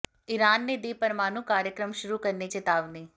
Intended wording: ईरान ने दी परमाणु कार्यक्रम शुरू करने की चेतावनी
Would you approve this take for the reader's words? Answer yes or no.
no